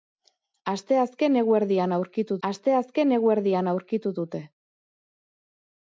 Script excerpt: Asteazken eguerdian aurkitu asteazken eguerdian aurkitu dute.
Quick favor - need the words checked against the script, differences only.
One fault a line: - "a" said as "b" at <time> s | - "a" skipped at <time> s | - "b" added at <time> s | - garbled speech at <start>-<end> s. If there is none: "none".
none